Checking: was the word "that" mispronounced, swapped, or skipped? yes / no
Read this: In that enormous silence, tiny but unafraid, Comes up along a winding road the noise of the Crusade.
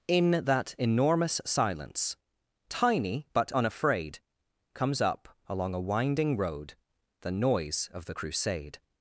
no